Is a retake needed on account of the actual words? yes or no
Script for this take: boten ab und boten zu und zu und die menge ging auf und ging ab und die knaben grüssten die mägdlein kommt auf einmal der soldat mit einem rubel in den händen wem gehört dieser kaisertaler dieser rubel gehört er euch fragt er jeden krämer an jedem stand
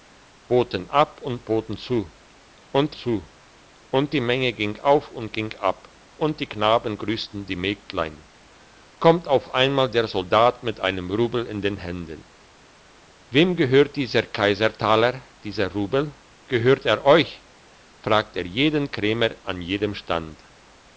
no